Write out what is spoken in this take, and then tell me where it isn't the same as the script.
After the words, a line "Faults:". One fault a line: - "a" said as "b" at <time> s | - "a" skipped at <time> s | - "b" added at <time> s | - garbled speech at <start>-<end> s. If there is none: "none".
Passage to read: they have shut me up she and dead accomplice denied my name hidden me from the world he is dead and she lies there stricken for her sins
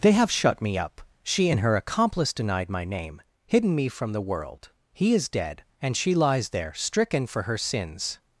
they have shut me up she and her accomplice denied my name hidden me from the world he is dead and she lies there stricken for her sins
Faults:
- "dead" said as "her" at 1.6 s